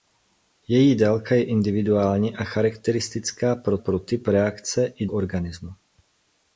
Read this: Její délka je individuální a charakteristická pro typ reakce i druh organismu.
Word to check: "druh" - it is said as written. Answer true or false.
false